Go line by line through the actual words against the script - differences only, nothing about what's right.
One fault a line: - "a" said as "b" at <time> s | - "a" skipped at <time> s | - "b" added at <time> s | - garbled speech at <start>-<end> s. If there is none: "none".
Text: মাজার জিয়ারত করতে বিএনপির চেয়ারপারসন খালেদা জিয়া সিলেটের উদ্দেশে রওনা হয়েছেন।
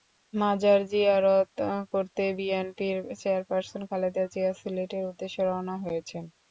none